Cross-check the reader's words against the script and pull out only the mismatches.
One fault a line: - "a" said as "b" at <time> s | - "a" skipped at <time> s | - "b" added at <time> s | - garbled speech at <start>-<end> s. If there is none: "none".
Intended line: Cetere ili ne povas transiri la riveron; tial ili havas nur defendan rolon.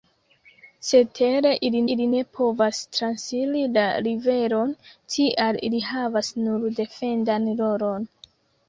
- "ili" added at 1.9 s